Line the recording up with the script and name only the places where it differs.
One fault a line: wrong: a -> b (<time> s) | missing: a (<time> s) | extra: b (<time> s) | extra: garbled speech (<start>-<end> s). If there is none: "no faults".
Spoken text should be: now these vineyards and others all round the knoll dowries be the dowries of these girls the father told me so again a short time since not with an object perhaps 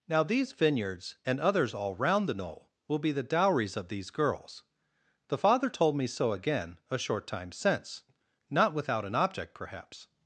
wrong: dowries -> will (2.9 s)
wrong: with -> without (8.7 s)